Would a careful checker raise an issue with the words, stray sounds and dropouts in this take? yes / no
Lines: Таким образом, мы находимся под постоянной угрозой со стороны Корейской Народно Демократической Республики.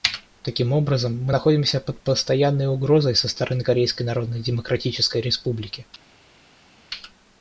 no